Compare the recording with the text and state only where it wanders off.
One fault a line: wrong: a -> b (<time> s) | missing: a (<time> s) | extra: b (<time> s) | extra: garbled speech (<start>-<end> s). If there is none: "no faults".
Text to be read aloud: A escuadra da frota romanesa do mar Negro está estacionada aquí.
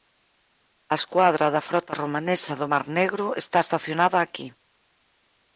no faults